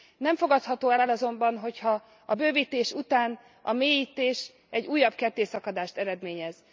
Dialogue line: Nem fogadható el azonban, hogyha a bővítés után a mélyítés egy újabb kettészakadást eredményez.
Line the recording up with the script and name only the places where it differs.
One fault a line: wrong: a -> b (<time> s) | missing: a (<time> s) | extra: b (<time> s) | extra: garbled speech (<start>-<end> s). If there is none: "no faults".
extra: el (1.0 s)